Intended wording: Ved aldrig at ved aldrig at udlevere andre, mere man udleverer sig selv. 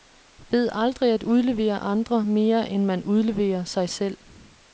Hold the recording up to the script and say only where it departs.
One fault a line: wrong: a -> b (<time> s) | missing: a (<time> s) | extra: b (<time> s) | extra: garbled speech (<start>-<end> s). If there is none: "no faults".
missing: ved aldrig at (1.2 s)
extra: end (2.7 s)